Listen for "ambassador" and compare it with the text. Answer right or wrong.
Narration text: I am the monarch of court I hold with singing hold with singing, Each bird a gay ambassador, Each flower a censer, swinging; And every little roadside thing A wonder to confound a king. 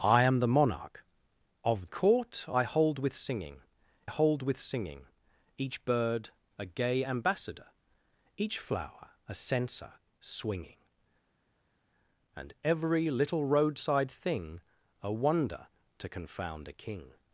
right